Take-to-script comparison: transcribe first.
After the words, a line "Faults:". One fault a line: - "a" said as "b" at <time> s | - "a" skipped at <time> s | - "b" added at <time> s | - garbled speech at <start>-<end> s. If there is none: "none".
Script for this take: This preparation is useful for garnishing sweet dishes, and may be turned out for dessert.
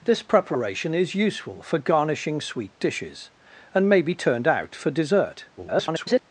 This preparation is useful for garnishing sweet dishes, and may be turned out for dessert. [garbled]
Faults:
- garbled speech at 5.6-6.2 s